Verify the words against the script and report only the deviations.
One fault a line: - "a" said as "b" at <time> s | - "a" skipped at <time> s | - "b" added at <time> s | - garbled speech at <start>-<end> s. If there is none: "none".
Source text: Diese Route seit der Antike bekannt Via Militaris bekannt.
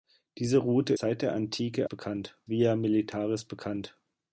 none